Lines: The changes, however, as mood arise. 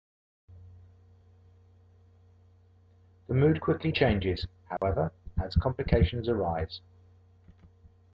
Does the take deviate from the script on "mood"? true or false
true